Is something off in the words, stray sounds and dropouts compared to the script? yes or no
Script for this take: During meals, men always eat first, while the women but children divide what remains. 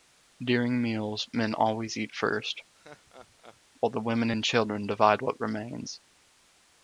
yes